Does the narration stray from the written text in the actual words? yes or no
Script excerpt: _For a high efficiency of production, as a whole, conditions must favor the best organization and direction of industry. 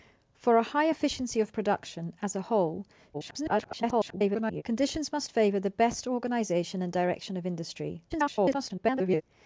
yes